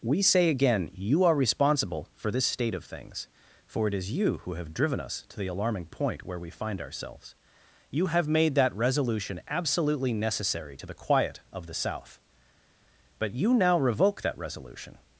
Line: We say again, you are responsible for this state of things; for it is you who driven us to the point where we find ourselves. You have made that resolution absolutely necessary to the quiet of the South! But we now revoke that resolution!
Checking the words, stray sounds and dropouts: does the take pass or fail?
fail